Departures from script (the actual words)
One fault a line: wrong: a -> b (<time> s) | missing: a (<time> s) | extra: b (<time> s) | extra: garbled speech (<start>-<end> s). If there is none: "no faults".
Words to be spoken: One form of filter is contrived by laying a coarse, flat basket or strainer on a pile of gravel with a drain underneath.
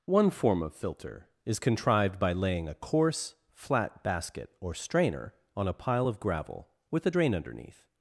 no faults